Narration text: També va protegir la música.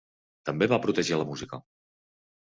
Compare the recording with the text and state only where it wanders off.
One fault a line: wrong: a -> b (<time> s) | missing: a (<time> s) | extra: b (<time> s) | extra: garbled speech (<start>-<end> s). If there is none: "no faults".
no faults